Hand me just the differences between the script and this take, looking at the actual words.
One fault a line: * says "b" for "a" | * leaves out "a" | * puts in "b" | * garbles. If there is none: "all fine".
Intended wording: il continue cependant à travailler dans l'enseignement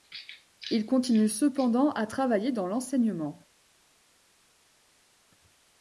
all fine